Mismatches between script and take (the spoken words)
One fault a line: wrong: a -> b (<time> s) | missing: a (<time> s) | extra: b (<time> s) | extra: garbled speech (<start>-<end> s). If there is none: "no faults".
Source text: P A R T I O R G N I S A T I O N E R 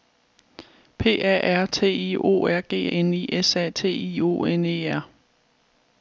no faults